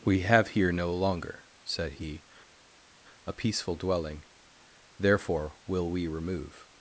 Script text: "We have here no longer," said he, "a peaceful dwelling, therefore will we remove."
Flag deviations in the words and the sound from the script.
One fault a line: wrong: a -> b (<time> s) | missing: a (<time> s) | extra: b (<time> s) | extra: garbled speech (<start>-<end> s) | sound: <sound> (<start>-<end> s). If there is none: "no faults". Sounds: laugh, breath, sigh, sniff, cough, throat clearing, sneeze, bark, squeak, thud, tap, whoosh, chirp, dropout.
no faults